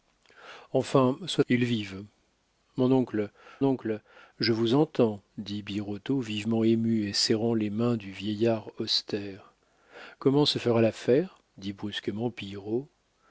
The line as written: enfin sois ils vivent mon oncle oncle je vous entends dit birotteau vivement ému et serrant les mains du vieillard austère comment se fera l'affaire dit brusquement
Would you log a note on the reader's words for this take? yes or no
no